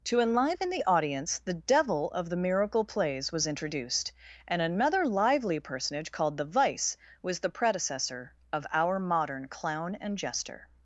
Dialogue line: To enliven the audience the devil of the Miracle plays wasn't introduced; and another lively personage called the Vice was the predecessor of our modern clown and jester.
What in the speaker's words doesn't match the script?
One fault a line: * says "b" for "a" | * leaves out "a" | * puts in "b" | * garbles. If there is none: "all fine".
* says "was" for "wasn't"